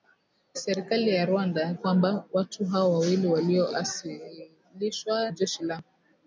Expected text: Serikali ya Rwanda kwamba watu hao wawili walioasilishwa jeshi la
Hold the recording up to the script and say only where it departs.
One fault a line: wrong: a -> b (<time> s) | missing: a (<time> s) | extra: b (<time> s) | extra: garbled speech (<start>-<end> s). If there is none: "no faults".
no faults